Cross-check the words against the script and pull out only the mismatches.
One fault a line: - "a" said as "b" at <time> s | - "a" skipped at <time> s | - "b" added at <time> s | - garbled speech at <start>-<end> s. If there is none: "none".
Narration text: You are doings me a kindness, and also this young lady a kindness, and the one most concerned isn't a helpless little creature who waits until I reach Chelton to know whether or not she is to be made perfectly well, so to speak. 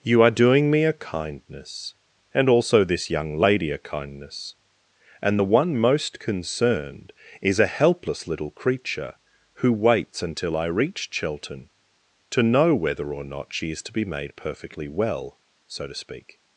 - "doings" said as "doing" at 0.3 s
- "isn't" said as "is" at 7.4 s